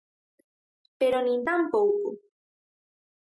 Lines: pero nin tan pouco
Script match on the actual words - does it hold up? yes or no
yes